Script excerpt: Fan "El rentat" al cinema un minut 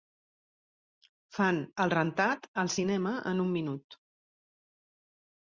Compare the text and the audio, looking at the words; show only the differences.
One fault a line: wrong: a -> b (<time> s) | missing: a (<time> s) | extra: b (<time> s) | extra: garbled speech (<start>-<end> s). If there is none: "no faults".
extra: en (3.3 s)